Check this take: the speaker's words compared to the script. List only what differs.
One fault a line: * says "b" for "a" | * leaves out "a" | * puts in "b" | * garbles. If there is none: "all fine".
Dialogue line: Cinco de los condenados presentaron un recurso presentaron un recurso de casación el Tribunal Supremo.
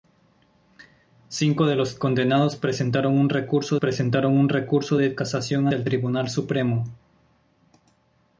all fine